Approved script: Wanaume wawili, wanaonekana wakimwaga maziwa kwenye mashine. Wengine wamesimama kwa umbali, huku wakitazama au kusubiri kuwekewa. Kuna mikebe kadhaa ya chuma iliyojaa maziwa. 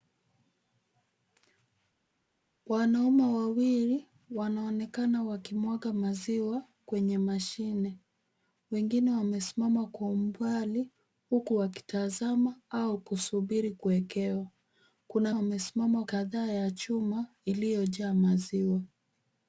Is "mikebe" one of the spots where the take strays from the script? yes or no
yes